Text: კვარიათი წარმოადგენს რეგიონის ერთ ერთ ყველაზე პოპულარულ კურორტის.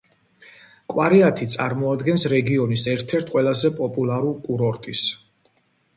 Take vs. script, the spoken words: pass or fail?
pass